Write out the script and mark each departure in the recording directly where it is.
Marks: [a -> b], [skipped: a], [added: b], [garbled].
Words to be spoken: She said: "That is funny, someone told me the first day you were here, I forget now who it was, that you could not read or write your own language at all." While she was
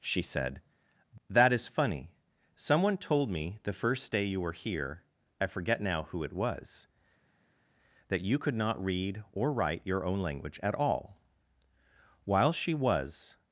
She said: "That is funny, someone told me the first day you were here, I forget now who it was, that you could not read or write your own language at all." While she was